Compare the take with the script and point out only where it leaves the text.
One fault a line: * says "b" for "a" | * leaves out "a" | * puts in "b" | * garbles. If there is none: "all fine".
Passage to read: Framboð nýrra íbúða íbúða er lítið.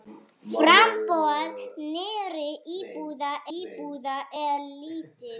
all fine